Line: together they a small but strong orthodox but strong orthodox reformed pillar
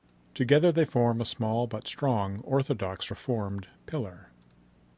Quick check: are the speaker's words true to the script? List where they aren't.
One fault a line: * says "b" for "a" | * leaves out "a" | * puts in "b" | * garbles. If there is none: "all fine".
* puts in "form"
* leaves out "but strong orthodox"